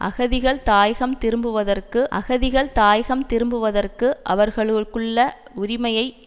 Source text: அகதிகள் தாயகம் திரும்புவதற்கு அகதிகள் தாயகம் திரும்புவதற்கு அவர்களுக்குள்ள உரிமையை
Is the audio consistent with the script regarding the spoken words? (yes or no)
yes